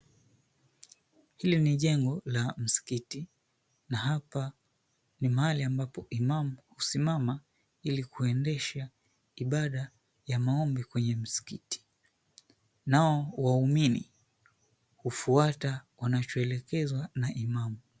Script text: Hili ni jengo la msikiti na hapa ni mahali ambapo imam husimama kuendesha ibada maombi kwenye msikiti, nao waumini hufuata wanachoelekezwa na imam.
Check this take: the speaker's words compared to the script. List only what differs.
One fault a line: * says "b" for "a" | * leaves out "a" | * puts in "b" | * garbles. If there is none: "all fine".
* puts in "ili"
* puts in "ya"